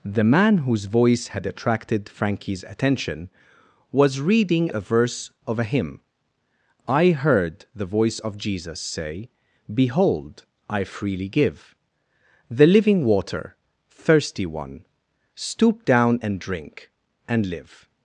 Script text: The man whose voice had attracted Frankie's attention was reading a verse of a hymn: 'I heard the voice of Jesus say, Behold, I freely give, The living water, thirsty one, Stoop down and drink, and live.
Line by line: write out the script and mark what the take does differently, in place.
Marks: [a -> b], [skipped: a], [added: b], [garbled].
The man whose voice had attracted Frankie's attention was reading a verse of a hymn: 'I heard the voice of Jesus say, Behold, I freely give, The living water, thirsty one, Stoop down and drink, and live.